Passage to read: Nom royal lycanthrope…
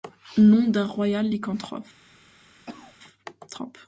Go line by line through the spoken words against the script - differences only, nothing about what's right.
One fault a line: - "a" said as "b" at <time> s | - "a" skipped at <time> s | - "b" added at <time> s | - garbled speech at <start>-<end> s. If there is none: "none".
- "d'un" added at 0.7 s